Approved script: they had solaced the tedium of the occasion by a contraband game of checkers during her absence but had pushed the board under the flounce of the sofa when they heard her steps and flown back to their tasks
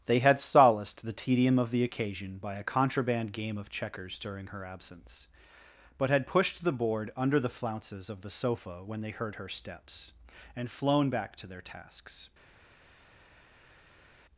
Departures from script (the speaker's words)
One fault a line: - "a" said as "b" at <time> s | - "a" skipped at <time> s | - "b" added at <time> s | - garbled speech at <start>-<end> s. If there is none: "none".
- "flounce" said as "flounces" at 7.5 s